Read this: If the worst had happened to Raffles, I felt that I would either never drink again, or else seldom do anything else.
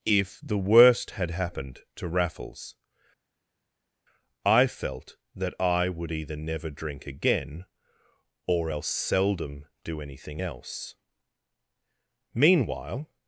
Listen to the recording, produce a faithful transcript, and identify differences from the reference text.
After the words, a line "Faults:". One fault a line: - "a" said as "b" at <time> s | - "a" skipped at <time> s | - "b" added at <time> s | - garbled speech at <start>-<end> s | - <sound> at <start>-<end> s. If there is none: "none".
If the worst had happened to Raffles, I felt that I would either never drink again, or else seldom do anything else. Meanwhile
Faults:
- "Meanwhile" added at 12.3 s